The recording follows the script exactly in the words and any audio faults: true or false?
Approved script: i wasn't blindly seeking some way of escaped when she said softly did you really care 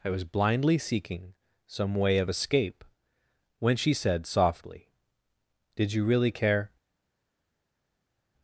false